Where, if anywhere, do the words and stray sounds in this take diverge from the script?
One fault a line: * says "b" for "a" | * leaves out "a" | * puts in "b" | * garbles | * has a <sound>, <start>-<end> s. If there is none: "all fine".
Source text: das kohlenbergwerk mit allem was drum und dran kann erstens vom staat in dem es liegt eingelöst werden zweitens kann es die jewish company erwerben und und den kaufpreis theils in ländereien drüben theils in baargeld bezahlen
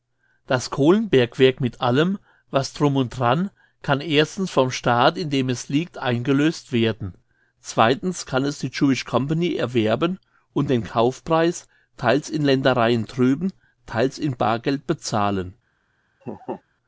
* leaves out "und"
* has a laugh, 16.2-16.6 s